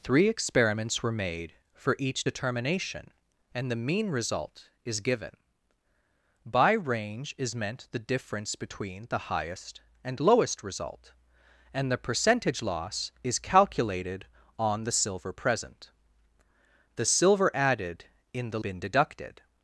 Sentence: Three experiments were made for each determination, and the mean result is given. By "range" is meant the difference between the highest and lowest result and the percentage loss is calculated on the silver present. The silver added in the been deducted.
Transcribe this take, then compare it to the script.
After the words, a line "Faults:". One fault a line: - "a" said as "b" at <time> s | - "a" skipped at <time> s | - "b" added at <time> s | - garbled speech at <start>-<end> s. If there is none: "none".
Three experiments were made for each determination, and the mean result is given. By "range" is meant the difference between the highest and lowest result and the percentage loss is calculated on the silver present. The silver added in the been deducted.
Faults:
none